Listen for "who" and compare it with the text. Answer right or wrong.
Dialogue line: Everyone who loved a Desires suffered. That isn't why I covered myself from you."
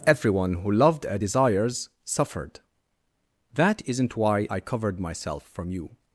right